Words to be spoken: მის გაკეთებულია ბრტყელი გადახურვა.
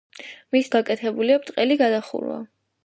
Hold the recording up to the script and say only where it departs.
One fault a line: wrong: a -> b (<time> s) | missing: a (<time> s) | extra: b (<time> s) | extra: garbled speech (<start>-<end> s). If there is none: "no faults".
no faults